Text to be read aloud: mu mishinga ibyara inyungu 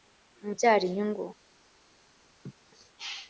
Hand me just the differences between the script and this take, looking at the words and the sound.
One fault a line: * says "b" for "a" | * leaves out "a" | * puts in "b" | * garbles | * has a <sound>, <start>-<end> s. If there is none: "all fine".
* leaves out "mishinga"
* has a laugh, 2.4-2.5 s